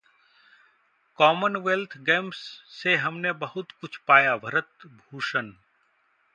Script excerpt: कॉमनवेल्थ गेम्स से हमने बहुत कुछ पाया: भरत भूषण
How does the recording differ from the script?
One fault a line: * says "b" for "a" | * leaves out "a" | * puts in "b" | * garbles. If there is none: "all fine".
all fine